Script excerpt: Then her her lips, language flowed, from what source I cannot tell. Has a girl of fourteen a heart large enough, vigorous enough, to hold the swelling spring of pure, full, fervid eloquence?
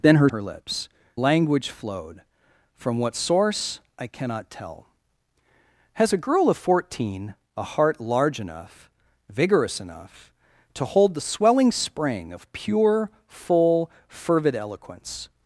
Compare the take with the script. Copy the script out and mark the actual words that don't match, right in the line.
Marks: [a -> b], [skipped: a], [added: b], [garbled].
Then her her lips, language flowed, from what source I cannot tell. Has a girl of fourteen a heart large enough, vigorous enough, to hold the swelling spring of pure, full, fervid eloquence?